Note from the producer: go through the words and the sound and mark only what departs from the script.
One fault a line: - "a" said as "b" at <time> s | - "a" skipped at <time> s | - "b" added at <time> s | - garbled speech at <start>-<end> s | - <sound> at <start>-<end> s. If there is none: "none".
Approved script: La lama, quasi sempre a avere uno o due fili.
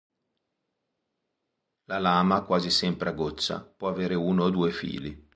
- "goccia può" added at 3.1 s